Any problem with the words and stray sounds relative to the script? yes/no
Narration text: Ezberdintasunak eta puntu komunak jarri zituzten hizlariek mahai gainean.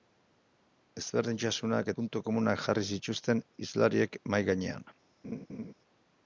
yes